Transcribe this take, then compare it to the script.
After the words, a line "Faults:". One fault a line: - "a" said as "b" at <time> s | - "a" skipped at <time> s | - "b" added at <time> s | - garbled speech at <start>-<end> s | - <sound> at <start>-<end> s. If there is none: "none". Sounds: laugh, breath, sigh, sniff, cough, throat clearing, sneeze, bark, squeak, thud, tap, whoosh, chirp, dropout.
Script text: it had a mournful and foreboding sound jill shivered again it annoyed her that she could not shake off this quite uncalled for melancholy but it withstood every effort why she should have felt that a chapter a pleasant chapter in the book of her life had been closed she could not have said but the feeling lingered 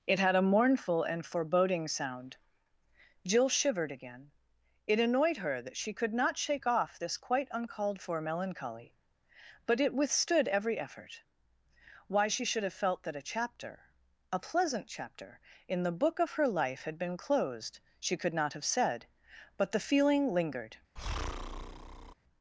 it had a mournful and foreboding sound jill shivered again it annoyed her that she could not shake off this quite uncalled for melancholy but it withstood every effort why she should have felt that a chapter a pleasant chapter in the book of her life had been closed she could not have said but the feeling lingered
Faults:
- breath at 21.0-22.1 s